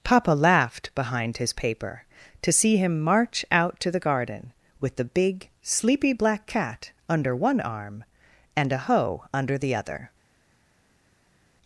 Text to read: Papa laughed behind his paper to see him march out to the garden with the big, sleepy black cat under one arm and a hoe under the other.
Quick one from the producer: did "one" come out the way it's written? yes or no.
yes